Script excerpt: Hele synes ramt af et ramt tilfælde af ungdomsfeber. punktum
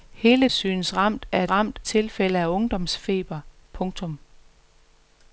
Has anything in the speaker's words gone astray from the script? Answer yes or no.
no